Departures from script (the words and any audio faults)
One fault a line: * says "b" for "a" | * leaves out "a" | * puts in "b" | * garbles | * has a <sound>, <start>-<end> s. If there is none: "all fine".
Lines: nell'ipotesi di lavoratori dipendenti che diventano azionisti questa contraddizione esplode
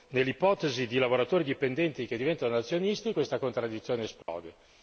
* has a dropout, 4.2-4.3 s